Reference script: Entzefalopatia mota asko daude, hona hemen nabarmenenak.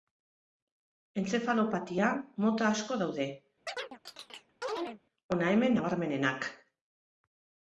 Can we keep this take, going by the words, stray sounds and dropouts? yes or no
no